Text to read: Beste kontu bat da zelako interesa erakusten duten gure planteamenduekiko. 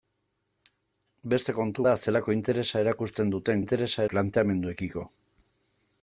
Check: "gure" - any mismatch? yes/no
yes